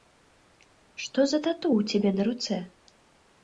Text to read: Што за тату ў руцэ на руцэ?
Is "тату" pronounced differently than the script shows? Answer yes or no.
no